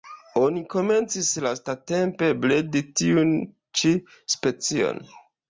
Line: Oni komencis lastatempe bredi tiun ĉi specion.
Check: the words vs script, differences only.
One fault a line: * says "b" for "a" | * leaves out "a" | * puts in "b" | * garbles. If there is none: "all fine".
all fine